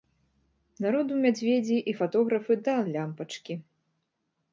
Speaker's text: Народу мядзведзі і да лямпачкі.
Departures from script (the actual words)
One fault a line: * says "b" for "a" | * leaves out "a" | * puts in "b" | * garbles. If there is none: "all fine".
* puts in "фатографы"